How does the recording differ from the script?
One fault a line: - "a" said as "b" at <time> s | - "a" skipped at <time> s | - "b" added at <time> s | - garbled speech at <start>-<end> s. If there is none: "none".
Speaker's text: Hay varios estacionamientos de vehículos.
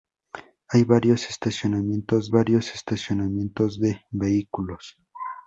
- "varios estacionamientos" added at 2.3 s